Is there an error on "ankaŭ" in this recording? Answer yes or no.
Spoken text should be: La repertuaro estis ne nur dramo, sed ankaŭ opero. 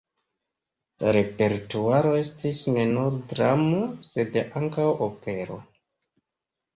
no